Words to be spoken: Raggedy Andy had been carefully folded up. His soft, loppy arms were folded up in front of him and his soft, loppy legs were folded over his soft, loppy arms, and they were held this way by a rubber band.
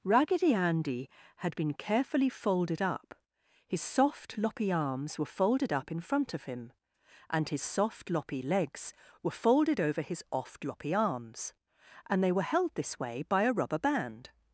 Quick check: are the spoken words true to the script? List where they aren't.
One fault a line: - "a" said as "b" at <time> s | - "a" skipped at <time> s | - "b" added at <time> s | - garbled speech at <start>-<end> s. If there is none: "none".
- "soft" said as "oft" at 10.3 s